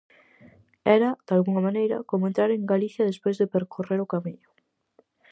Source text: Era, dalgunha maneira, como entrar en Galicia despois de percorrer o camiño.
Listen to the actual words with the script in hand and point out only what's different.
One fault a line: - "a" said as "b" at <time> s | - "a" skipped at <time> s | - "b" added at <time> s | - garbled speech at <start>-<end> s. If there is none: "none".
none